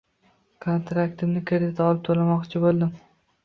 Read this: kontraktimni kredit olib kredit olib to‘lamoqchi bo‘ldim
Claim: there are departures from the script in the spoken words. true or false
true